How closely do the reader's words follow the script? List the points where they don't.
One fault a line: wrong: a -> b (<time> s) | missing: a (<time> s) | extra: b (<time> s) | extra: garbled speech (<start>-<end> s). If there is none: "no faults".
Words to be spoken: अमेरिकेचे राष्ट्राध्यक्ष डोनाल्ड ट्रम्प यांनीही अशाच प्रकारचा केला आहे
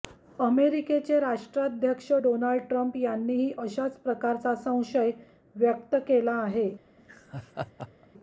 extra: संशय व्यक्त (4.6 s)